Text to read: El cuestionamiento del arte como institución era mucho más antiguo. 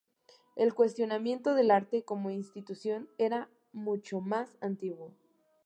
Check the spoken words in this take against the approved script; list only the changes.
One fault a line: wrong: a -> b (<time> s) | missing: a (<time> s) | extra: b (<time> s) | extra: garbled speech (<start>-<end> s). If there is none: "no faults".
no faults